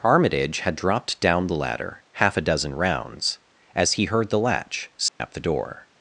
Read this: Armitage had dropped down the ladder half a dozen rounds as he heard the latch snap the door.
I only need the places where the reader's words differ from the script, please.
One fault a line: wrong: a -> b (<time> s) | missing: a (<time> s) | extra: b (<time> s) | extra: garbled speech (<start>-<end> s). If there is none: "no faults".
no faults